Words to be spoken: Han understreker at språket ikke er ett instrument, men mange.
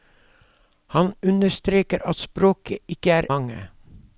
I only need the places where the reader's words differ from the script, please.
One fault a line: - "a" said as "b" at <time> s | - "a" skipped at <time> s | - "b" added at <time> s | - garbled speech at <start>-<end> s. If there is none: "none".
- "ett instrument men" skipped at 3.3 s